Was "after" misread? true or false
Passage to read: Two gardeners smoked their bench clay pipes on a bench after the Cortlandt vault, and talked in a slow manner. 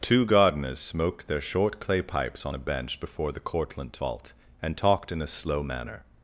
true